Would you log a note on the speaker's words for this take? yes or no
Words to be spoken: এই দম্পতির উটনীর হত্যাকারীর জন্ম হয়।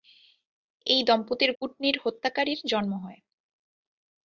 no